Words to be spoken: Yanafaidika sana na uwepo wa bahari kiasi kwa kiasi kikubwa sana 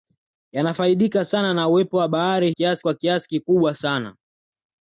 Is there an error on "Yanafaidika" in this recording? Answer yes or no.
no